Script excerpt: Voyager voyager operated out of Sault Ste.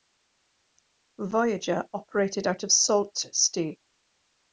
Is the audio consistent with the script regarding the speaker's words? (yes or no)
no